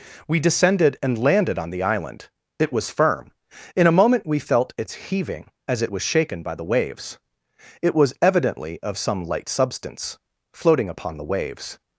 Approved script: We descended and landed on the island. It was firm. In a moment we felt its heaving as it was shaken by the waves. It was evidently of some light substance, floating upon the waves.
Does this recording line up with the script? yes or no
yes